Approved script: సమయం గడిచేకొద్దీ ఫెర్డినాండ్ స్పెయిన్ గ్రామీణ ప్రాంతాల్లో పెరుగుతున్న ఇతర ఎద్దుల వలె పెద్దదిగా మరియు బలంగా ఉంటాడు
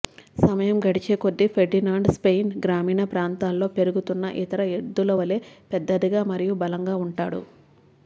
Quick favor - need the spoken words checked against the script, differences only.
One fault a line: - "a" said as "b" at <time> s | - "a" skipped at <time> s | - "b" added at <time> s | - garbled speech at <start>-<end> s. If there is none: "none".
none